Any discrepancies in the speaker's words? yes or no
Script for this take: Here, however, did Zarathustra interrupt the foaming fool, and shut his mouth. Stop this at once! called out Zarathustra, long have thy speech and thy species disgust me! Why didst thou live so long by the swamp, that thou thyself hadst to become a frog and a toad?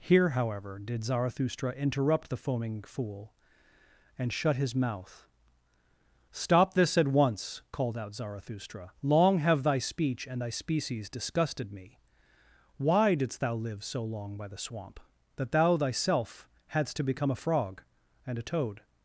yes